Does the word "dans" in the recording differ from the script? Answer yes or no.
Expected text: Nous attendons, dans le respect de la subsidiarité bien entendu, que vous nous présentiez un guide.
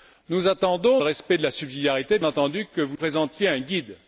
yes